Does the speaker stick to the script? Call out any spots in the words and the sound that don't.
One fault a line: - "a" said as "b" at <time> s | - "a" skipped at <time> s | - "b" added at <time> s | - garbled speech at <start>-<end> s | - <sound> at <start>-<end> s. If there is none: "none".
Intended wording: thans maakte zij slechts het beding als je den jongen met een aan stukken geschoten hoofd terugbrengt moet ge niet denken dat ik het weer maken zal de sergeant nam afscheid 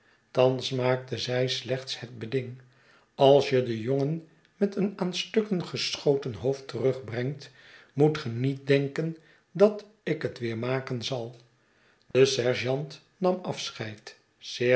- dropout at 12.1-12.1 s